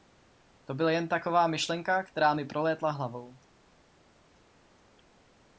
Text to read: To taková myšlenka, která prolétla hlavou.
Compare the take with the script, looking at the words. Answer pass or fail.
fail